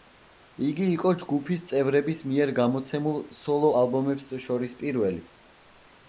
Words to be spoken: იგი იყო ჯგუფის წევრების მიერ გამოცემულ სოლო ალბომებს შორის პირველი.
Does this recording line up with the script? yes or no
yes